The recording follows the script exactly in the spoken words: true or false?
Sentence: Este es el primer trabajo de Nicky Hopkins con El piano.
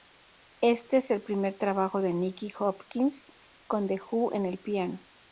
false